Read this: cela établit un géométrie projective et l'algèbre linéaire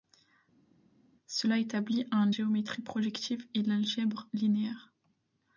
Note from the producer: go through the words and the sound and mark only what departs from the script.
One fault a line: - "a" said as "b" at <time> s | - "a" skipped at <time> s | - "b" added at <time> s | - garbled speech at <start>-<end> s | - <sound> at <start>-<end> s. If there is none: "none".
none